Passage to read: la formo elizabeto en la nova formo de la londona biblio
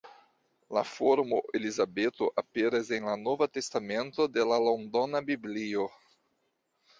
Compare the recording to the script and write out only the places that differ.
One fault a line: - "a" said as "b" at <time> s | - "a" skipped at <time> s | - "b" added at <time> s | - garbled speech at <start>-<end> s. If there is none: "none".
- "aperas" added at 2.4 s
- "formo" said as "testamento" at 3.6 s